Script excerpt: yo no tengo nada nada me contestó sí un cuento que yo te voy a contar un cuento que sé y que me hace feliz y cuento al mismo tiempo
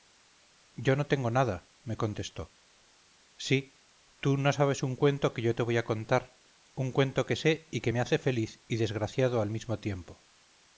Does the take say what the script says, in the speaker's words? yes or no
no